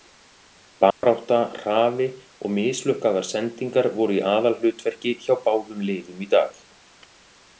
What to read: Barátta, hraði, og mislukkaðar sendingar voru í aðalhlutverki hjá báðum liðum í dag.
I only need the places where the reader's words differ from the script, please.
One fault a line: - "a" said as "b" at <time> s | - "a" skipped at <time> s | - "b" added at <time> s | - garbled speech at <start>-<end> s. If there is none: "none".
none